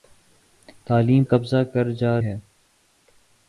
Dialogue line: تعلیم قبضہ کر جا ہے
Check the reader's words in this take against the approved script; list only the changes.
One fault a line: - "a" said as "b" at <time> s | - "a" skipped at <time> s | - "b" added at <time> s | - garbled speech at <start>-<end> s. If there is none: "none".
none